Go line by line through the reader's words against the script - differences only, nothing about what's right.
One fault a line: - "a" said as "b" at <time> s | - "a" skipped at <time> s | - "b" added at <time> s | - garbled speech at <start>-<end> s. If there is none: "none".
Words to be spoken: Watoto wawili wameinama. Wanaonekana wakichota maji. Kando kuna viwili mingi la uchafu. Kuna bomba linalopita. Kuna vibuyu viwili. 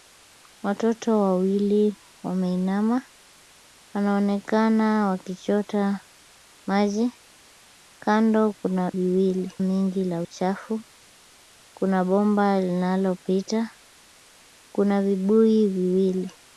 none